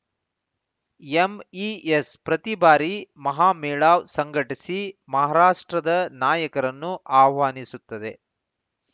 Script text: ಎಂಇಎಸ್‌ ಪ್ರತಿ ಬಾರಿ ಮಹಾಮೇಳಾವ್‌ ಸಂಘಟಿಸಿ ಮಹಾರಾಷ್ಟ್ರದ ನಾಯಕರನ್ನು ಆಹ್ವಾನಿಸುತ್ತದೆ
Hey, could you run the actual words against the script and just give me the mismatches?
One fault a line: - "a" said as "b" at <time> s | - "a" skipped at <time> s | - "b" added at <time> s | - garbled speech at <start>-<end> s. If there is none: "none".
none